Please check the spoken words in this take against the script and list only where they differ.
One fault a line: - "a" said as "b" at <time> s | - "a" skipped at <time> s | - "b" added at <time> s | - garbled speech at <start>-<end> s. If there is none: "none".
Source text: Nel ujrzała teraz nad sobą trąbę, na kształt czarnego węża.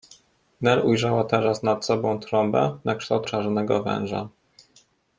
none